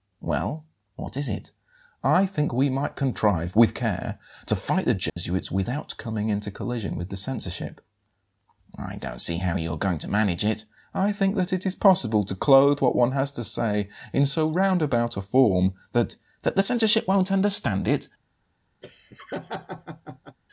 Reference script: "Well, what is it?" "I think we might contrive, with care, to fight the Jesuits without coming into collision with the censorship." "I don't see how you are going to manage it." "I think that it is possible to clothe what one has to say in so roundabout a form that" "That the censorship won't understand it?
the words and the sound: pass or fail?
fail